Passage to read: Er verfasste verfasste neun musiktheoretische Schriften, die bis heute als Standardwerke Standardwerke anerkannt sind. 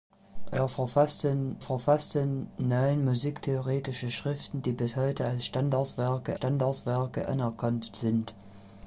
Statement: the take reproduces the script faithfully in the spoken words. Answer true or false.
true